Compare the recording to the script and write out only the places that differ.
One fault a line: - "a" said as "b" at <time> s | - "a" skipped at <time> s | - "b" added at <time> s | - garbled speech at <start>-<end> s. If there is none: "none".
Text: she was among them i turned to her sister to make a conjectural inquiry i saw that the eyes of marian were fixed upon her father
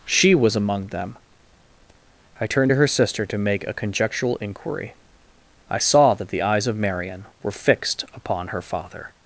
none